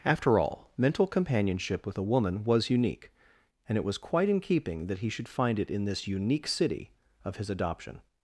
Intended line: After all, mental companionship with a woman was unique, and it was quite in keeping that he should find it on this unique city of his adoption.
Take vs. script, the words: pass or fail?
fail